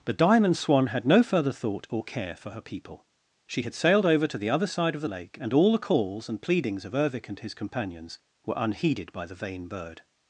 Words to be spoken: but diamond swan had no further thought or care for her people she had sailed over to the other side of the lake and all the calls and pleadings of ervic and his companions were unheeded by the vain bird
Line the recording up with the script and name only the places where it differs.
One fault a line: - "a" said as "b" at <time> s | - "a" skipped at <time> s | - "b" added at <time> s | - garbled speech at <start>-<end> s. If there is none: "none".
none